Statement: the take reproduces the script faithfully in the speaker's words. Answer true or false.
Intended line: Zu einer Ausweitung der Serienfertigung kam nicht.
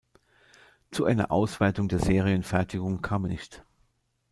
true